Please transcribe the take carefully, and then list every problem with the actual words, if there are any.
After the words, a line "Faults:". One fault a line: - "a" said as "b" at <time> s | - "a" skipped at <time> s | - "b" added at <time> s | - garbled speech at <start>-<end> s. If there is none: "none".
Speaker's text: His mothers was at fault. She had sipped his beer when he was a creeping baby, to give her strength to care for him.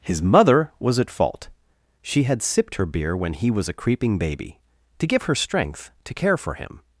His mother was at fault. She had sipped her beer when he was a creeping baby, to give her strength to care for him.
Faults:
- "mothers" said as "mother" at 0.2 s
- "his" said as "her" at 2.8 s